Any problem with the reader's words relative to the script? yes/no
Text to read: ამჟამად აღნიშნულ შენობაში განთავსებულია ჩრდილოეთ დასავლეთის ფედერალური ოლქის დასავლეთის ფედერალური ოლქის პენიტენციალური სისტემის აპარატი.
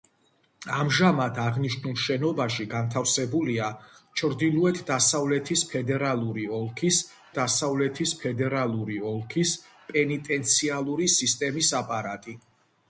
no